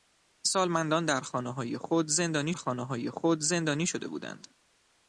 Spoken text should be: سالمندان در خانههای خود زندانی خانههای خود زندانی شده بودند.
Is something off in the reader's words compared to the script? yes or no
no